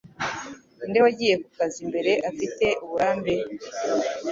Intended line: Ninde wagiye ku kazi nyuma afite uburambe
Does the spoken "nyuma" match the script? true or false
false